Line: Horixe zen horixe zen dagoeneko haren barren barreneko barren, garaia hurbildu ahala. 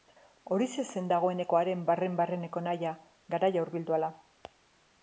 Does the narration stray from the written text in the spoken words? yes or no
yes